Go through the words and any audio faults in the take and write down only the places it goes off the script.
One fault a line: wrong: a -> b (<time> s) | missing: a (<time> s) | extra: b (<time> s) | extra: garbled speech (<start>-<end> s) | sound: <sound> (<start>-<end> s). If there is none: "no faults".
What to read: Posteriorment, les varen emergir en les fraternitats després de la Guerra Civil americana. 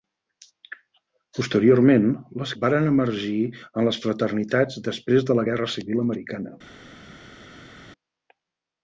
no faults